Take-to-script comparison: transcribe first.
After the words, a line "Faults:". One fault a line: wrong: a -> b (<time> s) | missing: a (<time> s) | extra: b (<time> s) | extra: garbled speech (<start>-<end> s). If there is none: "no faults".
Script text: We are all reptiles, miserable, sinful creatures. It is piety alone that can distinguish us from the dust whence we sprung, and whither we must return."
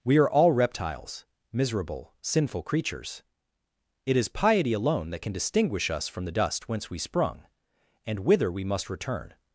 We are all reptiles, miserable, sinful creatures. It is piety alone that can distinguish us from the dust whence we sprung, and whither we must return."
Faults:
no faults